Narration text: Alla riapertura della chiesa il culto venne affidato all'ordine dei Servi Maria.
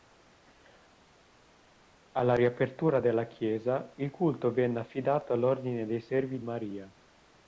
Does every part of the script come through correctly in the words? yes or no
yes